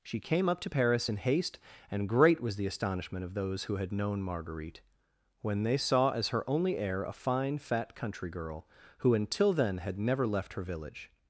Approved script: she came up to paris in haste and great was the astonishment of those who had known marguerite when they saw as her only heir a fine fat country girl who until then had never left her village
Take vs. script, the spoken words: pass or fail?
pass